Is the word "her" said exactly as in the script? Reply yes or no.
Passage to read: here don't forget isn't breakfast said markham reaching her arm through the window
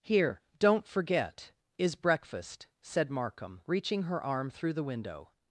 yes